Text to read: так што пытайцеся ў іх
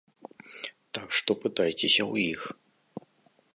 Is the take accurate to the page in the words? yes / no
yes